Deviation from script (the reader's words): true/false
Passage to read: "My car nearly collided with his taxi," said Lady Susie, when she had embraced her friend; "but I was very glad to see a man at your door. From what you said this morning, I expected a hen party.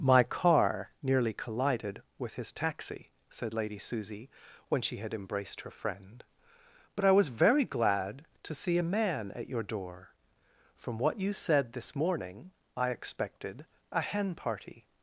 false